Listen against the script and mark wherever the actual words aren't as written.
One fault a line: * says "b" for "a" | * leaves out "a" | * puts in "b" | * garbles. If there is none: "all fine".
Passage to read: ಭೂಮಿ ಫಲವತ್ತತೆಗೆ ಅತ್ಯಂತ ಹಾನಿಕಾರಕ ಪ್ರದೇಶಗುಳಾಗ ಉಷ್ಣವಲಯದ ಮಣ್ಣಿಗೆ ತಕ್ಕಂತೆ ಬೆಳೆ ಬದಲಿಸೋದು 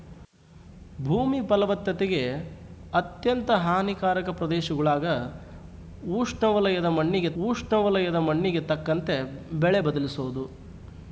* puts in "ಉಷ್ಣವಲಯದ ಮಣ್ಣಿಗೆ"